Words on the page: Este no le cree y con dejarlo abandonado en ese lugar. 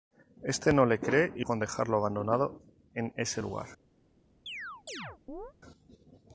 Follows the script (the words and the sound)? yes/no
no